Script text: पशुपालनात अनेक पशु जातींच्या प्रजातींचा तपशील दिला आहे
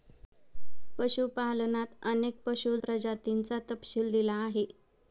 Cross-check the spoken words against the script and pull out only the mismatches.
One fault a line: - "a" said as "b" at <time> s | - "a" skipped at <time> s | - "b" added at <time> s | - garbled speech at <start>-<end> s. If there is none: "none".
- "जातींच्या" skipped at 2.8 s